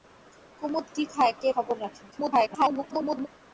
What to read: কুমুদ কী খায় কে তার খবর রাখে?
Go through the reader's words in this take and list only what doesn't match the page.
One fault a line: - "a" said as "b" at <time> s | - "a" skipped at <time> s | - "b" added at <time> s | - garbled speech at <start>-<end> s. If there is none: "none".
- "তার" skipped at 1.5 s
- garbled speech at 2.1-3.3 s